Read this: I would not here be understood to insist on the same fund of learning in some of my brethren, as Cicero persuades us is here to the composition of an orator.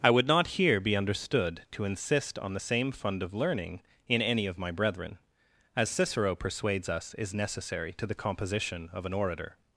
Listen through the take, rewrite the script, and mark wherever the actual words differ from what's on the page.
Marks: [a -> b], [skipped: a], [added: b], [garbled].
I would not here be understood to insist on the same fund of learning in [some -> any] of my brethren, as Cicero persuades us is [here -> necessary] to the composition of an orator.